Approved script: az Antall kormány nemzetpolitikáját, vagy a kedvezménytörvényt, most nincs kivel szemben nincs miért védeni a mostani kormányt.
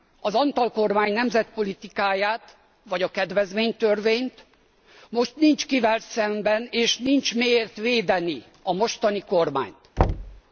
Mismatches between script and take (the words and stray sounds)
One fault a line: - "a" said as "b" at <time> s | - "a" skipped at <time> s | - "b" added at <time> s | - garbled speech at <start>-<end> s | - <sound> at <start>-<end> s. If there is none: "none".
- "és" added at 6.7 s
- thud at 10.0-10.4 s